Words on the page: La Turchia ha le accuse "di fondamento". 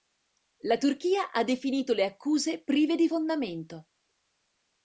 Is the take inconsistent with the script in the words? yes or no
yes